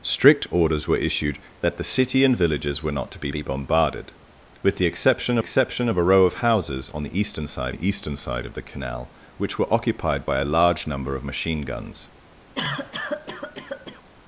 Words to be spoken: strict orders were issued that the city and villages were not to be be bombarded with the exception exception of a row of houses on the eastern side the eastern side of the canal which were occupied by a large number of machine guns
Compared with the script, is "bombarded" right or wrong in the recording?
right